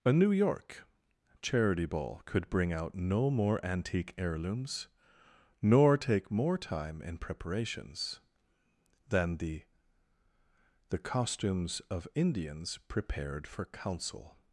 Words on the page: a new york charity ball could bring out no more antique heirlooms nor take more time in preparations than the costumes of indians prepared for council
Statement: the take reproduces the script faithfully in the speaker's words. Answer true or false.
false